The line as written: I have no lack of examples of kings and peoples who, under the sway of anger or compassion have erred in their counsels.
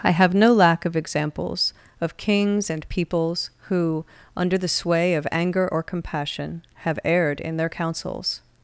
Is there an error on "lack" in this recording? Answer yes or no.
no